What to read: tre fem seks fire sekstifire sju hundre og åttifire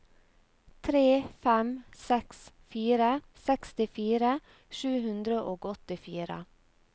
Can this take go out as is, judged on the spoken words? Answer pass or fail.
pass